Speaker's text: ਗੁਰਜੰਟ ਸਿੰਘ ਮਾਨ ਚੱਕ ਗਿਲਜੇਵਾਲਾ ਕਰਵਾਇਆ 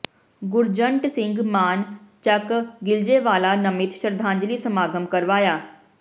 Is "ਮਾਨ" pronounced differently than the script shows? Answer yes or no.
no